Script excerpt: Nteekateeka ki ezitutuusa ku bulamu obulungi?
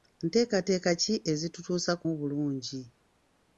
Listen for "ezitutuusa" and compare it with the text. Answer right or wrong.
right